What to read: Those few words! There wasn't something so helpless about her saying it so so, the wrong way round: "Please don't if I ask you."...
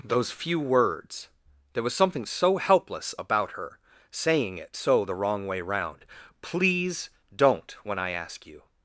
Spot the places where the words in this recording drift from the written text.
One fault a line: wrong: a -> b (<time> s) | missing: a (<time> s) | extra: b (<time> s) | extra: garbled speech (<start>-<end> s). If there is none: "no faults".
wrong: wasn't -> was (1.8 s)
missing: so (5.0 s)
wrong: if -> when (7.8 s)